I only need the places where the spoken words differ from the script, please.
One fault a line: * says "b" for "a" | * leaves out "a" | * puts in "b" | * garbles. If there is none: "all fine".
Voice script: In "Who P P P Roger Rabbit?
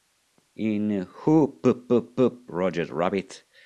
all fine